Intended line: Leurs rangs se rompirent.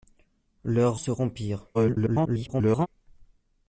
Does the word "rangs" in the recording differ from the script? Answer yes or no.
yes